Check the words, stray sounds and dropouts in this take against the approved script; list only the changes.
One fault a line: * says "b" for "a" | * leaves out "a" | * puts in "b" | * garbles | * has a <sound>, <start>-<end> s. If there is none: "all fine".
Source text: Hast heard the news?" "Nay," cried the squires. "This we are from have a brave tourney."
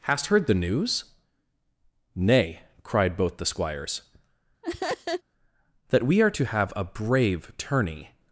* puts in "both"
* has a laugh, 4.6-5.2 s
* says "That" for "This"
* says "to" for "from"